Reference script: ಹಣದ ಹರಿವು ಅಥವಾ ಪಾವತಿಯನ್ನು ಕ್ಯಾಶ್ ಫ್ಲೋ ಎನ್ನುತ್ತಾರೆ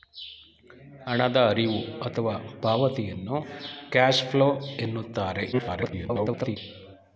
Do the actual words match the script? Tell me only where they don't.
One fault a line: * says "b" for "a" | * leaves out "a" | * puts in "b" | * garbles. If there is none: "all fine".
* garbles